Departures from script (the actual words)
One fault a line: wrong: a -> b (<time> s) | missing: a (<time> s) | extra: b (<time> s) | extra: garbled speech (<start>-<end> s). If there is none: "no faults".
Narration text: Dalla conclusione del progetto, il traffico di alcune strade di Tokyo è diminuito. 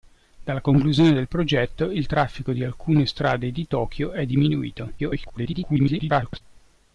extra: garbled speech (5.0-6.4 s)